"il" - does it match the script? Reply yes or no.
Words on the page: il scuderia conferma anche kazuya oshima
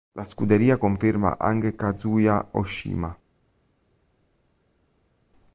no